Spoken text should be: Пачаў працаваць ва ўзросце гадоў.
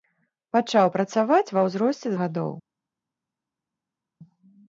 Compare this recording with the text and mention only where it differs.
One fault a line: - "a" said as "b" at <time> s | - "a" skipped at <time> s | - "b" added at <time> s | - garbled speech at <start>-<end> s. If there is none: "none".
none